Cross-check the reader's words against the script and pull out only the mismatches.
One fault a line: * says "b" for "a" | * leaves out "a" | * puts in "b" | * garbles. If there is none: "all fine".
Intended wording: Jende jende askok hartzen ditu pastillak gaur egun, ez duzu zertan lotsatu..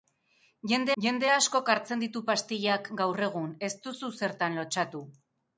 all fine